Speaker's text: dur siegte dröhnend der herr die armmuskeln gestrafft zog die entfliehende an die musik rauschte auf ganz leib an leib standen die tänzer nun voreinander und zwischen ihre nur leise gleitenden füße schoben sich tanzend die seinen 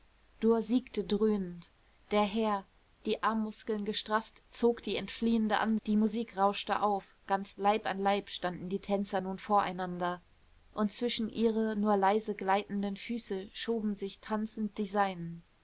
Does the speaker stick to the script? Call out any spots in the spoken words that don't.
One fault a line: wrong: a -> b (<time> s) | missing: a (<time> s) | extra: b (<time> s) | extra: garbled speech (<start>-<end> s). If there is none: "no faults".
no faults